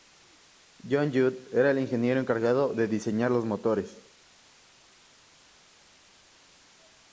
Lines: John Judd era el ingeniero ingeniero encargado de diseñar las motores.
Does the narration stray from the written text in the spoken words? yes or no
yes